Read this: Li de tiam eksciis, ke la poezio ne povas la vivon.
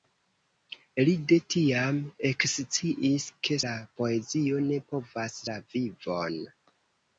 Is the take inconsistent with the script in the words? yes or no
no